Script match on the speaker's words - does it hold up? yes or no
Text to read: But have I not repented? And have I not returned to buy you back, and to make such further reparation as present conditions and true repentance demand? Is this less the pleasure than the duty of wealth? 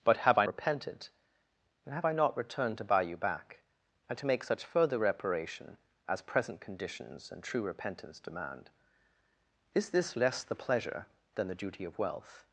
no